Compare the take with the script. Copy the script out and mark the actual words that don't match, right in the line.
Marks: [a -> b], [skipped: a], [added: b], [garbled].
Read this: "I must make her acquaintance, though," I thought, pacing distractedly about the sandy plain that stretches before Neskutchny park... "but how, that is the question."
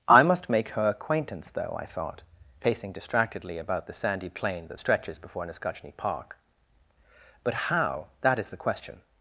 "I must make her acquaintance, though," I thought, pacing distractedly about the sandy plain that stretches before Neskutchny park... "but how, that is the question."